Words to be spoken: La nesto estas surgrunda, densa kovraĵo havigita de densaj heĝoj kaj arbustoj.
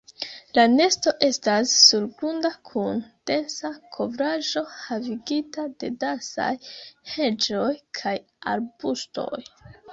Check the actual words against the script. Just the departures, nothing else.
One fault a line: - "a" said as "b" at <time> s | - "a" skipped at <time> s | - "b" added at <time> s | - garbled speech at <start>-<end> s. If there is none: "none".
- "kun" added at 2.7 s